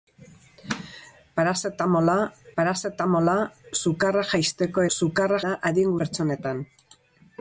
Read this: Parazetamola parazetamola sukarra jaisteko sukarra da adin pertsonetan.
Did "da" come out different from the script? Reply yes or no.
no